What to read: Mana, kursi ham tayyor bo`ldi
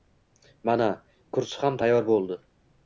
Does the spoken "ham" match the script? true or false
true